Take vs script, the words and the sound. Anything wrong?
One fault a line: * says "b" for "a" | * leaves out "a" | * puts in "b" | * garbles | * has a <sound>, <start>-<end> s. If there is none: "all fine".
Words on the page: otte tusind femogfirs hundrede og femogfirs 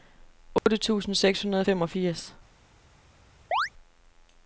* has a dropout, 0.6-0.7 s
* says "seks" for "femogfirs"
* has a chirp, 3.5-3.7 s